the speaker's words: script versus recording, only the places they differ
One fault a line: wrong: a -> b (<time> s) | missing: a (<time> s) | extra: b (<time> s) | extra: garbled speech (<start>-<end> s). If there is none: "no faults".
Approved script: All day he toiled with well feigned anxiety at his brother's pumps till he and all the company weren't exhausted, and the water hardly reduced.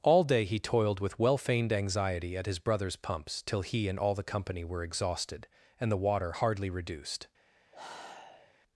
wrong: weren't -> were (4.6 s)